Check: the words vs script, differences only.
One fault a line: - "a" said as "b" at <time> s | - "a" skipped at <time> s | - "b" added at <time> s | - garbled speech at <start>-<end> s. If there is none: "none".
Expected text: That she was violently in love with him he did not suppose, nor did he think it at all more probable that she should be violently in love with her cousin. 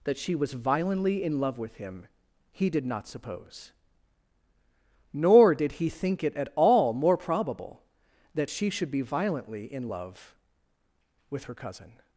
none